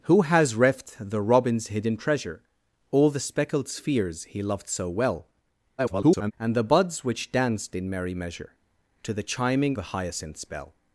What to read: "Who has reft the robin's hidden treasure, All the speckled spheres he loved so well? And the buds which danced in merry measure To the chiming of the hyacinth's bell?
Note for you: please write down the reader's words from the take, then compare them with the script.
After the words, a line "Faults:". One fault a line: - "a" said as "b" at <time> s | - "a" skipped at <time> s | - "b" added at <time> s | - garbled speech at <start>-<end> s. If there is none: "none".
"Who has reft the robin's hidden treasure, All the speckled spheres he loved so well? [garbled] And the buds which danced in merry measure To the chiming the hyacinth's bell?
Faults:
- garbled speech at 5.8-6.3 s
- "of" skipped at 9.8 s